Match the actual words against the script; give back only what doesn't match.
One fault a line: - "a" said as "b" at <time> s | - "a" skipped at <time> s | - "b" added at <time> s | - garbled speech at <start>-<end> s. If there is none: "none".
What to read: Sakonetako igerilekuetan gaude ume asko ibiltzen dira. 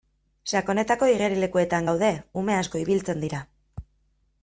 none